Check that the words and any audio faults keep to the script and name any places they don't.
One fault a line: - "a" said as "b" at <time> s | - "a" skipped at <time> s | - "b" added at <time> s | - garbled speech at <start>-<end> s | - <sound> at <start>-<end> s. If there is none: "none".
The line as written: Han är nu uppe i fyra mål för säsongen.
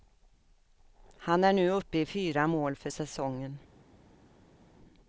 none